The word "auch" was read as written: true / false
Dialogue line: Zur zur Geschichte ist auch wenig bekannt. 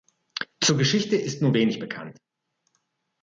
false